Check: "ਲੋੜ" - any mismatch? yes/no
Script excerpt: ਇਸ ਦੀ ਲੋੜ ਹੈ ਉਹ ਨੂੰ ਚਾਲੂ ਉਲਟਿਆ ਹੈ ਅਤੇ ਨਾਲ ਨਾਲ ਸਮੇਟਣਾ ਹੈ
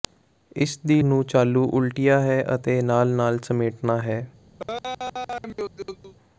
yes